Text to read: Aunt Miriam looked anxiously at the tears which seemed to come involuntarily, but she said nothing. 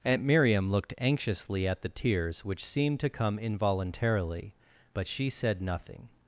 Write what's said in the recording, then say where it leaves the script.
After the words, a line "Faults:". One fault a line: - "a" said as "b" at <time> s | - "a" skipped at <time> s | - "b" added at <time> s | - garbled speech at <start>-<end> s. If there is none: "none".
Aunt Miriam looked anxiously at the tears which seemed to come involuntarily, but she said nothing.
Faults:
none